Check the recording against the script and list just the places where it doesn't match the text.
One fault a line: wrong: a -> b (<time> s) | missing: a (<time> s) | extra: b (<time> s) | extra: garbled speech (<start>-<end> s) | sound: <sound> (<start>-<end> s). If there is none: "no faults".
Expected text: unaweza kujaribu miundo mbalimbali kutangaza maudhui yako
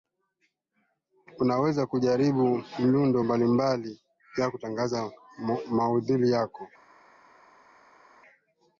extra: ya (4.4 s)